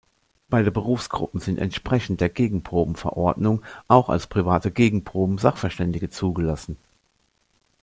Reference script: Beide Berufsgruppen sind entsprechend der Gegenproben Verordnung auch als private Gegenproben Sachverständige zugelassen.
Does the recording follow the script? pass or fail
pass